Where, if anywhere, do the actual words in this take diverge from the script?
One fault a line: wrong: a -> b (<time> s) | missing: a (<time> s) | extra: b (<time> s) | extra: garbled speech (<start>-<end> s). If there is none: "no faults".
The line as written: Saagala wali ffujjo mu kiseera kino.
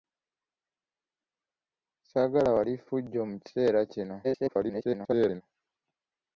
extra: garbled speech (4.2-5.4 s)